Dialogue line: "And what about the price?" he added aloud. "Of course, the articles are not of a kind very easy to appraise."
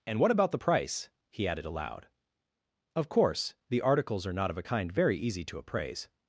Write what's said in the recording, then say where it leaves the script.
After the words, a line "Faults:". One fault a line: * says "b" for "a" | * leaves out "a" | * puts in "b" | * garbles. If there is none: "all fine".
"And what about the price?" he added aloud. "Of course, the articles are not of a kind very easy to appraise."
Faults:
all fine